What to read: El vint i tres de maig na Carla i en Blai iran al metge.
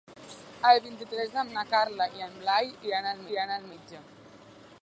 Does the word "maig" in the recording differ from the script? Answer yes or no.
yes